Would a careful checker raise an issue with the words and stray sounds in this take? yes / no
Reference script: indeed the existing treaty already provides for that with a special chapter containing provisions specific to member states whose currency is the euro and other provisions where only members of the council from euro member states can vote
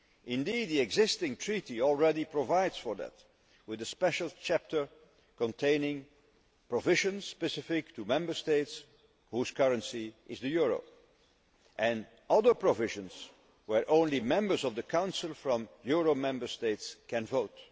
no